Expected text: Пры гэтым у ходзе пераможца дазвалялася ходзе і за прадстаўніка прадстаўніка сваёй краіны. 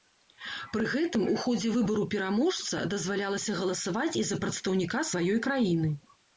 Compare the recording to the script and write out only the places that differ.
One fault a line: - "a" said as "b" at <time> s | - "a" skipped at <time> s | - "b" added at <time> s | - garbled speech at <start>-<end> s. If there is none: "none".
- "выбару" added at 1.7 s
- "ходзе" said as "галасаваць" at 3.6 s
- "прадстаўніка" skipped at 5.1 s